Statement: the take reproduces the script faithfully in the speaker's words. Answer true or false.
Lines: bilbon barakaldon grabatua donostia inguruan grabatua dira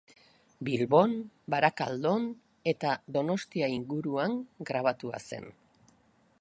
false